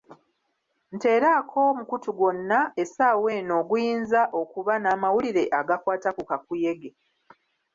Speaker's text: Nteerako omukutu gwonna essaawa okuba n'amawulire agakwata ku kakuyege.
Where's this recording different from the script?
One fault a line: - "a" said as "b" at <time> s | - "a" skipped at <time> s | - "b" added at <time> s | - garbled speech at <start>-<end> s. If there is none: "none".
- "eno oguyinza" added at 3.4 s